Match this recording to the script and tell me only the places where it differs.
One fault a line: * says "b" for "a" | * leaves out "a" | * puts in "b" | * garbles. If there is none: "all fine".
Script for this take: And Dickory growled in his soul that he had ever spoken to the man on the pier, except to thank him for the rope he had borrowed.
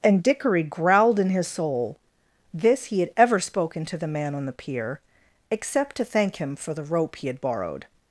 * says "this" for "that"